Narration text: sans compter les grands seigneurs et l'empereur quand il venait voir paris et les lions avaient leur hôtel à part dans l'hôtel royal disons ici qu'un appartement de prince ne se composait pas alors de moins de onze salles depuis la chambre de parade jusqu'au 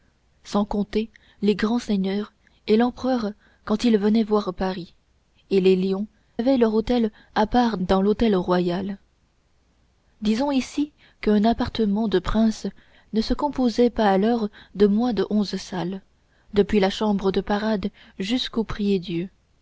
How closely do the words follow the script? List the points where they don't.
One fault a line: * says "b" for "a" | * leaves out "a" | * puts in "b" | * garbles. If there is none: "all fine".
all fine